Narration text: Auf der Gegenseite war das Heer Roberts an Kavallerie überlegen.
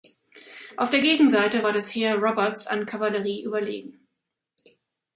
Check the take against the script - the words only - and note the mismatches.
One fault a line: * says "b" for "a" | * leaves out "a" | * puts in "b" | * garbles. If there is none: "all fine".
all fine